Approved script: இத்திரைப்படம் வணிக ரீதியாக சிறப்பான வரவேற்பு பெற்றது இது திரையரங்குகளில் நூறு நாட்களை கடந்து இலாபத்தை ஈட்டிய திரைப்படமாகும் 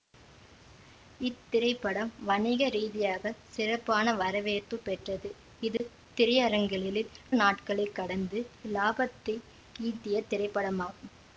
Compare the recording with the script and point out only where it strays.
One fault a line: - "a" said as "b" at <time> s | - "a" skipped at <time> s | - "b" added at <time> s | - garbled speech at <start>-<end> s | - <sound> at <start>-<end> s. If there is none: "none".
- dropout at 5.8-5.8 s
- "நூறு" skipped at 7.1 s